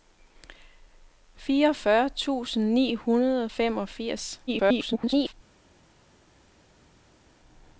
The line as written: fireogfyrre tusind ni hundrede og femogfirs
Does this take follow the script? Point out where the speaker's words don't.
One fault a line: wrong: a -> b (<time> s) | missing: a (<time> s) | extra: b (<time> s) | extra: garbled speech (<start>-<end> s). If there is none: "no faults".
extra: garbled speech (4.5-5.3 s)